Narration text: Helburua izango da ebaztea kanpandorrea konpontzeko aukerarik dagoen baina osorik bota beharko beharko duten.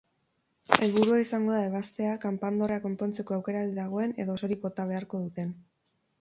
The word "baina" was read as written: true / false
false